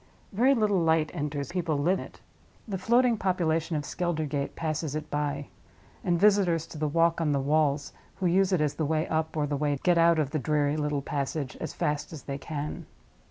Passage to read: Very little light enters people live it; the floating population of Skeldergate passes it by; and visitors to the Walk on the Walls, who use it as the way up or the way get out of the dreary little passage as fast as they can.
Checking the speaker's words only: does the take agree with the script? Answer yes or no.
yes